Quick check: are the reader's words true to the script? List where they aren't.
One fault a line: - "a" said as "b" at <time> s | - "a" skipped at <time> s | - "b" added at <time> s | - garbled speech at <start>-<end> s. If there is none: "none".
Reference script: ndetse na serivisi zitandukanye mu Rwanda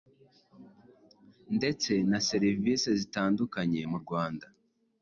none